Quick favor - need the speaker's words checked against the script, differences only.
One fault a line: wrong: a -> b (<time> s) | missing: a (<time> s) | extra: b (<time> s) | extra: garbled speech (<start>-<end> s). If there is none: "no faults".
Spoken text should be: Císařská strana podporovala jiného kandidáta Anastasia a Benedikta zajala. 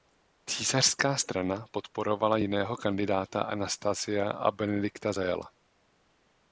no faults